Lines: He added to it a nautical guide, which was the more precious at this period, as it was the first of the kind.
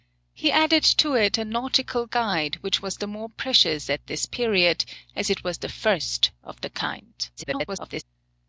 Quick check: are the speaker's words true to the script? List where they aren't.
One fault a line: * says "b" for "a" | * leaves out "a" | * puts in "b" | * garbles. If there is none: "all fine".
* garbles